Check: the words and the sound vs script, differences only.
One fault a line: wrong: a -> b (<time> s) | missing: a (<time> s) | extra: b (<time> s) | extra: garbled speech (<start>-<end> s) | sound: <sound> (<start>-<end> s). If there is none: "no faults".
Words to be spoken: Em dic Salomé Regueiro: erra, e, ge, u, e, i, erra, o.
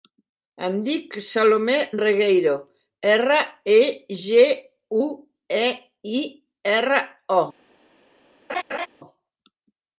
sound: laugh (8.5-8.9 s)